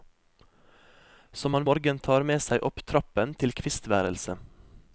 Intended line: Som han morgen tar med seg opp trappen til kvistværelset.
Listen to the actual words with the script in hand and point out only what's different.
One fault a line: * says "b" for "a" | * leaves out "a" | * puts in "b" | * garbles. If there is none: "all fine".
all fine